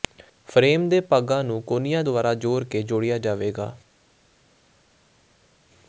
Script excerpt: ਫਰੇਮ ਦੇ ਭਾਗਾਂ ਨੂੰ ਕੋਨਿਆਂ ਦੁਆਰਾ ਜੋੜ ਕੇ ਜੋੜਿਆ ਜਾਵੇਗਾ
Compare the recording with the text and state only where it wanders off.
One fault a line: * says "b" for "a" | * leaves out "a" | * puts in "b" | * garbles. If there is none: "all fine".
all fine